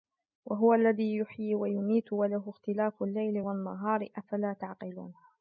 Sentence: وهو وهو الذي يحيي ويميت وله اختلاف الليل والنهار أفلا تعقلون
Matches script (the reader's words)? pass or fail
fail